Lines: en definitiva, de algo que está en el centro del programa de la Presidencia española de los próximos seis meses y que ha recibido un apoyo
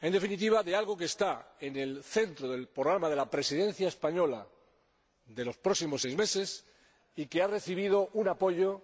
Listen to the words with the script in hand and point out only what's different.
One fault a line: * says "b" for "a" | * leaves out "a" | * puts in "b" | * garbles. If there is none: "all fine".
all fine